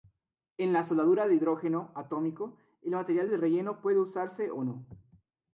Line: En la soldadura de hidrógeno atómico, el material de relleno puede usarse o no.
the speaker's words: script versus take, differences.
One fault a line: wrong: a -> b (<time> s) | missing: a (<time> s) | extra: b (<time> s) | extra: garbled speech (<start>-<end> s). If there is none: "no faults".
no faults